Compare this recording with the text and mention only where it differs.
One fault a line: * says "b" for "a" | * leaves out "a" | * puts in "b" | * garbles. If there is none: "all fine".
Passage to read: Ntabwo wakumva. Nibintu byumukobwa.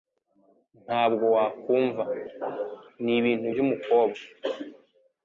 all fine